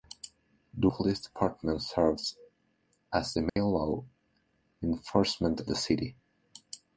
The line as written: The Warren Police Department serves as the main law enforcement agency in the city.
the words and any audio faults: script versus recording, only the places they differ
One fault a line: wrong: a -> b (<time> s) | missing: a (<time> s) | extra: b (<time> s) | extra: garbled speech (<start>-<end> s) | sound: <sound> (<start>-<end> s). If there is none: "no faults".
missing: Warren (0.9 s)
sound: dropout (3.5-3.6 s)
missing: agency in (5.6 s)